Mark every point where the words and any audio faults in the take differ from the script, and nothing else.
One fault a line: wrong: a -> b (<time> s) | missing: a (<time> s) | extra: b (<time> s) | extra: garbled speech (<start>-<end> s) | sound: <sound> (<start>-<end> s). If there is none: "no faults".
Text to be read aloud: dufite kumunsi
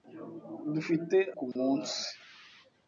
sound: dropout (1.5-1.6 s)